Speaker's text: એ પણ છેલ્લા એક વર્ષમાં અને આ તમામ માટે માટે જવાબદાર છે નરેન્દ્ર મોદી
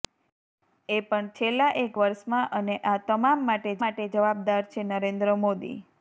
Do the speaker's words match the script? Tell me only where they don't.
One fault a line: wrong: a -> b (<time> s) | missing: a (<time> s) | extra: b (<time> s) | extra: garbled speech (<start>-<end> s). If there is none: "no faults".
no faults